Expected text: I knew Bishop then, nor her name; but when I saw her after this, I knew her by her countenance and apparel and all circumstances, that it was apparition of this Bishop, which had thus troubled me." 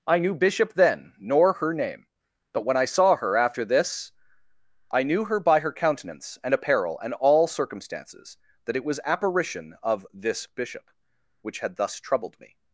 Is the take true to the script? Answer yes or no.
yes